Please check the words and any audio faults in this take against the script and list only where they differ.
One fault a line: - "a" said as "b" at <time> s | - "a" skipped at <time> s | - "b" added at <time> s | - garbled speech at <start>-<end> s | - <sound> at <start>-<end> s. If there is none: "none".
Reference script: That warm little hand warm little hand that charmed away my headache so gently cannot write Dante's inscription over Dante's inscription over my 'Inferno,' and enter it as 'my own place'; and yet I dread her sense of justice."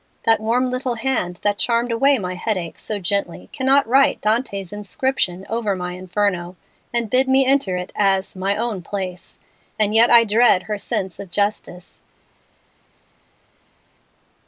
- "warm little hand" skipped at 1.4 s
- "Dante's inscription over" skipped at 5.8 s
- "bid me" added at 7.1 s